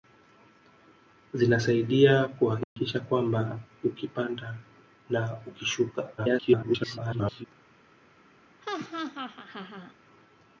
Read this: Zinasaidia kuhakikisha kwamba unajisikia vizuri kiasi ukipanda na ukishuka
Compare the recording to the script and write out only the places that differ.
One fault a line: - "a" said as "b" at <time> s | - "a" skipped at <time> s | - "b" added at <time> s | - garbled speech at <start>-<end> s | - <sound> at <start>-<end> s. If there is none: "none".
- dropout at 2.6-2.8 s
- "unajisikia vizuri kiasi" skipped at 3.6 s
- garbled speech at 6.2-7.4 s
- laugh at 8.6-9.9 s